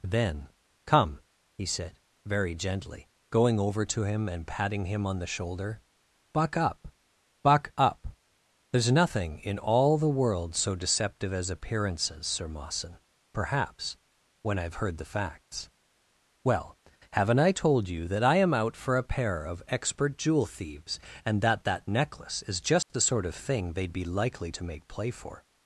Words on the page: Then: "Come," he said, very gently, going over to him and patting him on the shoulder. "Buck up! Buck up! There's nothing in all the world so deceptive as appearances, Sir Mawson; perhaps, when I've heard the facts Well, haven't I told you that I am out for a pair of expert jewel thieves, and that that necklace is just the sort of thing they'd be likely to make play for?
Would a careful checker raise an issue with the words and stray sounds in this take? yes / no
yes